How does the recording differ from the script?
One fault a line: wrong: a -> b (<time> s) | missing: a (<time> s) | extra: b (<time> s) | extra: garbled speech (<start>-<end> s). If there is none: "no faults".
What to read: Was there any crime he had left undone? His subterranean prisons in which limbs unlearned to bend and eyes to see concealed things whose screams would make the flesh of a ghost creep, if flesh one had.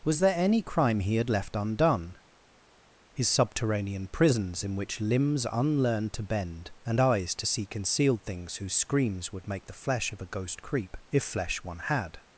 no faults